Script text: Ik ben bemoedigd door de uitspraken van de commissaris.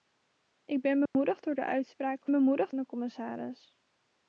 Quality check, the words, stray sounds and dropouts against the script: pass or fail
fail